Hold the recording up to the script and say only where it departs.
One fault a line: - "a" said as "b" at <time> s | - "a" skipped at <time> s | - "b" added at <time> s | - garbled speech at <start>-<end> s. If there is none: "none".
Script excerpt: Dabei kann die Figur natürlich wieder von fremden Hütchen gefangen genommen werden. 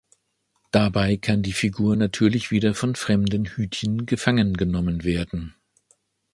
none